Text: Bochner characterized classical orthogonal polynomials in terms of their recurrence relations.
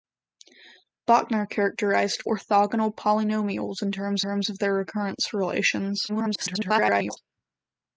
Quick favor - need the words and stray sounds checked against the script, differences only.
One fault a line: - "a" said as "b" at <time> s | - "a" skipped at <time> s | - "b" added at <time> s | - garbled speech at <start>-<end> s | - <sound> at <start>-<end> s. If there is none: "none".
- "classical" skipped at 2.2 s
- "terms" added at 4.2 s
- garbled speech at 6.1-7.2 s